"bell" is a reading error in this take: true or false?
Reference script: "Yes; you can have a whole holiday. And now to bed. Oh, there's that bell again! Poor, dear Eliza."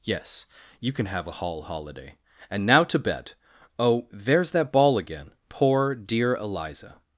true